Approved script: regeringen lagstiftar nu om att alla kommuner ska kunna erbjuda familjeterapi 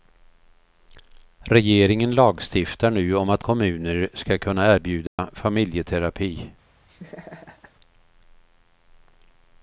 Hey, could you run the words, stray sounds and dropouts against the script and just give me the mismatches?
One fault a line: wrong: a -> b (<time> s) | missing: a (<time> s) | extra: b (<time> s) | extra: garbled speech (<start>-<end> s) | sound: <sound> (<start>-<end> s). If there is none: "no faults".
missing: alla (3.4 s)
sound: dropout (5.1-5.2 s)
sound: laugh (6.9-7.7 s)